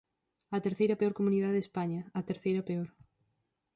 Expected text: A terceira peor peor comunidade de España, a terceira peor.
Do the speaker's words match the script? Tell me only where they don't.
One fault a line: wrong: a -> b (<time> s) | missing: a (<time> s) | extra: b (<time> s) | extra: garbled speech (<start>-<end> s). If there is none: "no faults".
missing: peor (1.1 s)